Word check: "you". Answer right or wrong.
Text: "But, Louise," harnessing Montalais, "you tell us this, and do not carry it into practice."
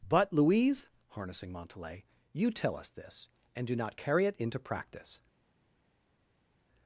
right